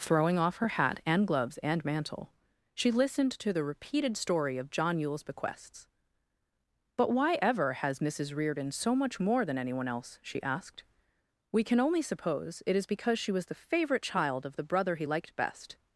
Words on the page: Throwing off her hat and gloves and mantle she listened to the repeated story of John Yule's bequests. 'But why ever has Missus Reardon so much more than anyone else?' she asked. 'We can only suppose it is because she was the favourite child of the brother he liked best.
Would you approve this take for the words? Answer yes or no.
yes